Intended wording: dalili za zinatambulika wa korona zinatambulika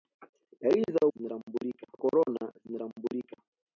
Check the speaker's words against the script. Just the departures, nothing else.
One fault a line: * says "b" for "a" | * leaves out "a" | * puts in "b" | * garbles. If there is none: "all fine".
all fine